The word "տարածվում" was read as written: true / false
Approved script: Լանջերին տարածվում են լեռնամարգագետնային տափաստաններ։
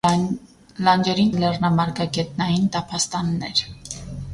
false